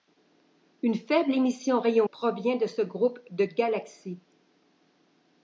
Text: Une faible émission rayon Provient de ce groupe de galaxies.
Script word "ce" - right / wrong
right